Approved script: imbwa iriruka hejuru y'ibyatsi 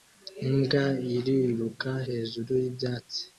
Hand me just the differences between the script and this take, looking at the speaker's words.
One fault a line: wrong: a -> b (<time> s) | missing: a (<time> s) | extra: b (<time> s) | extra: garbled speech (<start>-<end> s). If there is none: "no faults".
no faults